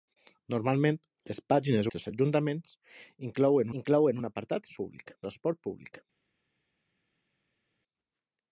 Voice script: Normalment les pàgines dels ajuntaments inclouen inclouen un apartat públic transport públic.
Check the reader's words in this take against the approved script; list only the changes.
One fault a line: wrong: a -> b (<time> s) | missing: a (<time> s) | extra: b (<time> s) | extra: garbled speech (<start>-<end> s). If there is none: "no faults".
no faults